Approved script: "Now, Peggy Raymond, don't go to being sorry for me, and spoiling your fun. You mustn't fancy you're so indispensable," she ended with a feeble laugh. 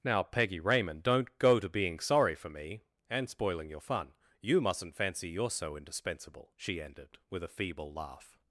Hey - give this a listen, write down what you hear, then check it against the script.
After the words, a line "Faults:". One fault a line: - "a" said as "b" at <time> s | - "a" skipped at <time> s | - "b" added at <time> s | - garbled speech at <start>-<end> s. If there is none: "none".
"Now, Peggy Raymond, don't go to being sorry for me, and spoiling your fun. You mustn't fancy you're so indispensable," she ended with a feeble laugh.
Faults:
none